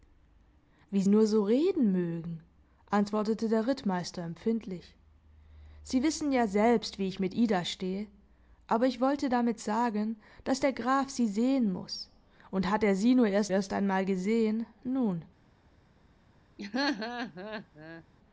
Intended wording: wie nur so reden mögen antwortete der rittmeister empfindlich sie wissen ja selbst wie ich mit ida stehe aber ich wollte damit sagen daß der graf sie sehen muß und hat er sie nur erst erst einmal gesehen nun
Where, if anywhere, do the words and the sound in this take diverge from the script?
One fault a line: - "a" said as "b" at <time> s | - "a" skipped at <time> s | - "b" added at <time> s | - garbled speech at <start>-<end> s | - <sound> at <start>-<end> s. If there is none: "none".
- laugh at 16.6-18.0 s